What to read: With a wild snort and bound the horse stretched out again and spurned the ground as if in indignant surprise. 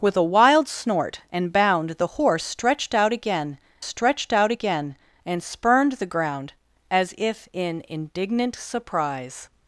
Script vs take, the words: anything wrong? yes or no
yes